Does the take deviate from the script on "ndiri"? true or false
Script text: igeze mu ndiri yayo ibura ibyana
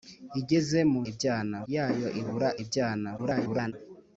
true